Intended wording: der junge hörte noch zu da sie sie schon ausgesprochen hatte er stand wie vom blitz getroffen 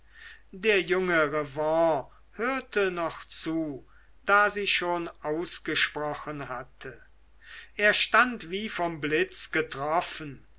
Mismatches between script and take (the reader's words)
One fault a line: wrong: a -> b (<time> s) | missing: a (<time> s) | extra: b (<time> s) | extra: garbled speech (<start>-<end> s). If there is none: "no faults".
extra: revanne (1.3 s)
missing: sie (4.7 s)